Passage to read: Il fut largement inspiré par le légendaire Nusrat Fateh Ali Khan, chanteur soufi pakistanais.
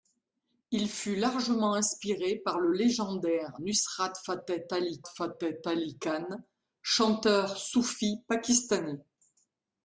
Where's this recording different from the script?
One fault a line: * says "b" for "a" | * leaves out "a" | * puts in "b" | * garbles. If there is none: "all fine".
* puts in "Fateh Ali"